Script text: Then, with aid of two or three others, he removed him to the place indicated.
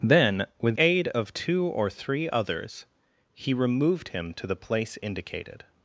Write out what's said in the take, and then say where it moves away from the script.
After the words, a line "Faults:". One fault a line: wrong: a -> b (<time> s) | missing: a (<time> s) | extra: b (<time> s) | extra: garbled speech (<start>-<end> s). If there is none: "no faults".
Then, with aid of two or three others, he removed him to the place indicated.
Faults:
no faults